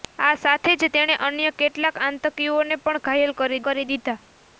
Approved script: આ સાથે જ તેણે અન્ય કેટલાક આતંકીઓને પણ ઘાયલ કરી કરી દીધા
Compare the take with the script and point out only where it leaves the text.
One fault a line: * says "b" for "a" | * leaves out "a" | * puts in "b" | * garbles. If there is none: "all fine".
all fine